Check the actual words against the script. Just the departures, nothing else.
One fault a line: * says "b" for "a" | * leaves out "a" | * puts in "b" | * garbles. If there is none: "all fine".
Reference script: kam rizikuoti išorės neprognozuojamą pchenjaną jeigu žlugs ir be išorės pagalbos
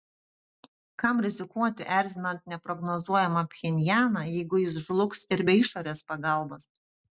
* says "erzinant" for "išorės"
* puts in "jis"